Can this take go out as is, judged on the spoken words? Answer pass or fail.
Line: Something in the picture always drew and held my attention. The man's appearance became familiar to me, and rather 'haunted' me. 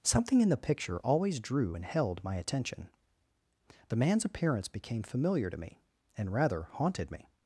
pass